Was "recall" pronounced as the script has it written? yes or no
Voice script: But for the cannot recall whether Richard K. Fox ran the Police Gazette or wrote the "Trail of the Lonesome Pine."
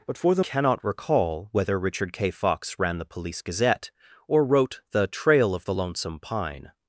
yes